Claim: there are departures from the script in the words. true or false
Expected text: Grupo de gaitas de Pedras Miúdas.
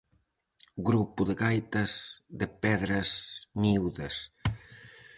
false